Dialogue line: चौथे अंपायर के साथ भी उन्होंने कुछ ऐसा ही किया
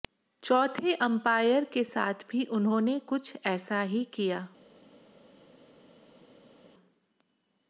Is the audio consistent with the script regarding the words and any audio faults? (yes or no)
yes